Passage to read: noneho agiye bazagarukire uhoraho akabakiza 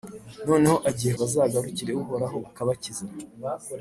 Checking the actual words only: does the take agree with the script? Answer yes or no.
yes